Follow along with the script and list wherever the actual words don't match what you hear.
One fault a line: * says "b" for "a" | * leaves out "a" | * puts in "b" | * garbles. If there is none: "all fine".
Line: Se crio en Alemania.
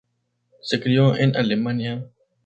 all fine